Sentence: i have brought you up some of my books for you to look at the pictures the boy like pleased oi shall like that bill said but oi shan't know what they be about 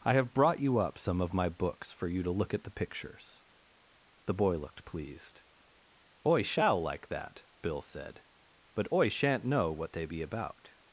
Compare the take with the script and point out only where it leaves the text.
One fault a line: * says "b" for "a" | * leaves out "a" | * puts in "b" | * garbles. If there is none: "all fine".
* says "looked" for "like"